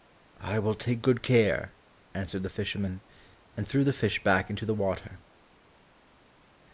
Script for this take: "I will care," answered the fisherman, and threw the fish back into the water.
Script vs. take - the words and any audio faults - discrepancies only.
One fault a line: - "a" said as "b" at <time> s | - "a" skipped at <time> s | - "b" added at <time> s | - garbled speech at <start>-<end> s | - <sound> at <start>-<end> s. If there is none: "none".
- "take good" added at 0.7 s